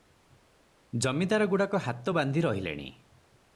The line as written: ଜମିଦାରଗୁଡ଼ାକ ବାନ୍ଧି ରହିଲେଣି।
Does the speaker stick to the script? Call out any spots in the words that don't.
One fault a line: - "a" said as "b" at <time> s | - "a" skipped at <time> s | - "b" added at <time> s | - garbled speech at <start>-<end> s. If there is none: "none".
- "ହାତ" added at 1.8 s